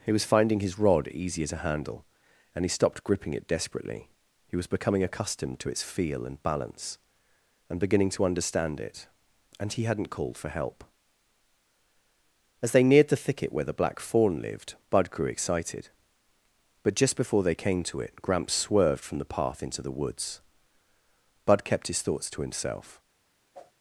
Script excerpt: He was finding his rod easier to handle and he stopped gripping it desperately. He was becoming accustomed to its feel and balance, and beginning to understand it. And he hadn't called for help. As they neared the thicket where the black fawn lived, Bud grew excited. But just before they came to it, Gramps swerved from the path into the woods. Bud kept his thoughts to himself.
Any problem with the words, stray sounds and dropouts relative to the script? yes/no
yes